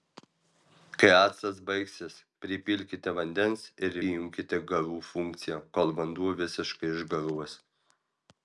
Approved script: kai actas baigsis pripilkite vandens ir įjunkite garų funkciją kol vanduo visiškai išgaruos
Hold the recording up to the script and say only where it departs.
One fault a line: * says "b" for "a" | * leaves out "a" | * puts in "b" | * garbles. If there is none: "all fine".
all fine